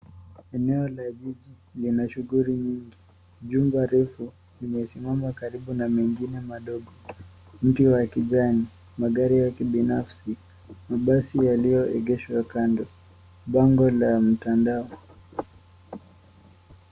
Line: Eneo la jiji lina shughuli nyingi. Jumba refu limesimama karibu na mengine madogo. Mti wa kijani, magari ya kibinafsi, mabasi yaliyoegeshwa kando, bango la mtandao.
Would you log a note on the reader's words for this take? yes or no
no